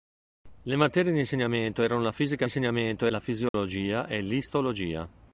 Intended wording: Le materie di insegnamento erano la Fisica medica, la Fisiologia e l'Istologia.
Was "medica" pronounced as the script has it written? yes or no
no